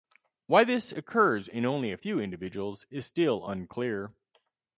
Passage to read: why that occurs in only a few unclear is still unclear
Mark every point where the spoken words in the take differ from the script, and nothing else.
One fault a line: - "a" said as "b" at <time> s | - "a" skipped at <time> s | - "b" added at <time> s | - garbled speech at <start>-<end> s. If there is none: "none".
- "that" said as "this" at 0.6 s
- "unclear" said as "individuals" at 2.2 s